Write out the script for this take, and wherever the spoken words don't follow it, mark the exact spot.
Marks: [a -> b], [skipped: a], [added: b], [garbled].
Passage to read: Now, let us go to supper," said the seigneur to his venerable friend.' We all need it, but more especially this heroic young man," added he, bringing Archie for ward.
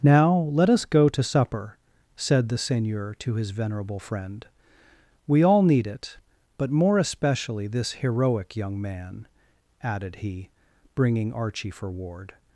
Now, let us go to supper," said the seigneur to his venerable friend.' We all need it, but more especially this heroic young man," added he, bringing Archie for ward.